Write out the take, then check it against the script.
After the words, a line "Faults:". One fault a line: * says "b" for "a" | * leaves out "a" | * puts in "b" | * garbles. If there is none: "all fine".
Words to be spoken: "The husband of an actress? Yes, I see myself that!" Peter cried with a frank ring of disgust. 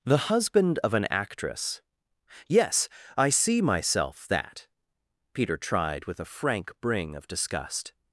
"The husband of an actress? Yes, I see myself that!" Peter tried with a frank bring of disgust.
Faults:
* says "tried" for "cried"
* says "bring" for "ring"